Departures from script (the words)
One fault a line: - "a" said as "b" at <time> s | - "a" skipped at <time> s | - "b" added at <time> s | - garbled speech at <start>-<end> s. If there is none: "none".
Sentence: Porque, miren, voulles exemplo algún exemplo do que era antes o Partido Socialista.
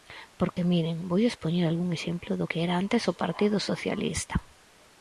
- "exemplo" said as "poñer" at 1.4 s